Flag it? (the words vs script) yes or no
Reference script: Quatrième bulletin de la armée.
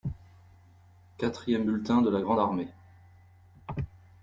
yes